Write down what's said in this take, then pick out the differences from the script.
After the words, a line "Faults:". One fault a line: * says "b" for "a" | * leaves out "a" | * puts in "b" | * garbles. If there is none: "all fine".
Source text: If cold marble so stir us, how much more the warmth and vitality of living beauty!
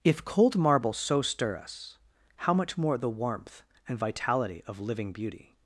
If cold marble so stir us, how much more the warmth and vitality of living beauty!
Faults:
all fine